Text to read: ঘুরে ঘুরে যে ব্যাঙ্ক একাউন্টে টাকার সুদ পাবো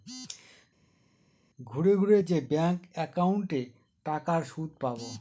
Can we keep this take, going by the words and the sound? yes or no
yes